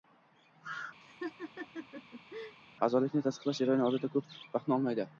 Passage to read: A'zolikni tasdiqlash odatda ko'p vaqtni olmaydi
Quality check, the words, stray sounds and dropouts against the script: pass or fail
fail